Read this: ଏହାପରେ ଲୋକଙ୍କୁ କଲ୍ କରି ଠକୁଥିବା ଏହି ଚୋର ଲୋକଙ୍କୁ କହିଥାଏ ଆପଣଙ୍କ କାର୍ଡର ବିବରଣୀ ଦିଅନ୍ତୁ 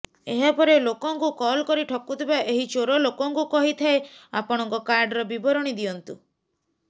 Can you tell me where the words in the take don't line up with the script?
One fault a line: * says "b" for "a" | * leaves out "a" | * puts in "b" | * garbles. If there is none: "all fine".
all fine